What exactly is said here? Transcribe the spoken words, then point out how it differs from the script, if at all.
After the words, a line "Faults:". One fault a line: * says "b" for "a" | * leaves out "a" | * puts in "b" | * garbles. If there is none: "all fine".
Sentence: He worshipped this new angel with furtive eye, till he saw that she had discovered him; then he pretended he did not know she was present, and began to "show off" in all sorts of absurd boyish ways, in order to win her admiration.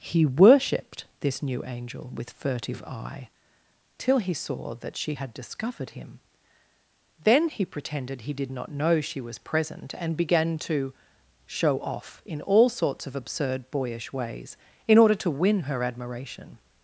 He worshipped this new angel with furtive eye, till he saw that she had discovered him; then he pretended he did not know she was present, and began to "show off" in all sorts of absurd boyish ways, in order to win her admiration.
Faults:
all fine